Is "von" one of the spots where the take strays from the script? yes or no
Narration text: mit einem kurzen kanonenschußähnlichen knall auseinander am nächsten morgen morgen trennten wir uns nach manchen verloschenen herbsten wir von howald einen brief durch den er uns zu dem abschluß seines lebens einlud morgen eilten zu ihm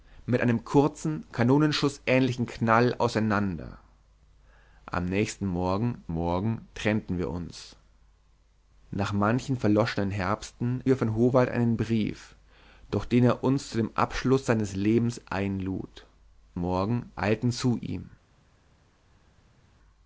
no